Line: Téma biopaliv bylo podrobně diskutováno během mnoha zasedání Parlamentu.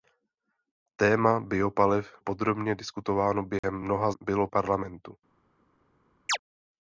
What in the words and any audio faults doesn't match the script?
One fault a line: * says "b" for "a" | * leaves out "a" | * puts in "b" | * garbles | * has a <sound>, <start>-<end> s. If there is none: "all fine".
* leaves out "bylo"
* has a dropout, 3.6-3.6 s
* says "bylo" for "zasedání"
* has a chirp, 6.3-6.4 s